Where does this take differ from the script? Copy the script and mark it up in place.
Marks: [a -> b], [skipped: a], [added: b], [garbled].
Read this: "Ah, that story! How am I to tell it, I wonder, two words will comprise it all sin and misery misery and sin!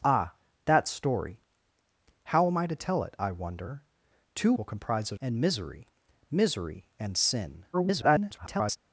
"Ah, that story! How am I to tell it, I wonder, two [skipped: words] will comprise it [skipped: all sin] and misery misery and sin! [garbled]